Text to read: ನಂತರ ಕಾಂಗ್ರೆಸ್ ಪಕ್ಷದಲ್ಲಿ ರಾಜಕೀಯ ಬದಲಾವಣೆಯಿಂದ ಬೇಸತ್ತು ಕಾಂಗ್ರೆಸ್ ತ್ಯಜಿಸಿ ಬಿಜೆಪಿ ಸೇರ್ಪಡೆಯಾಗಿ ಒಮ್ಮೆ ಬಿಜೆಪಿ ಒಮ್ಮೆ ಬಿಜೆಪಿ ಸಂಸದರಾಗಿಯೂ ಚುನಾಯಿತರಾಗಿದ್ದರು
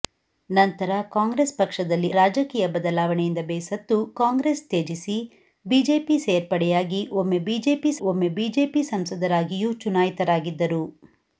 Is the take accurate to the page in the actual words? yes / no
yes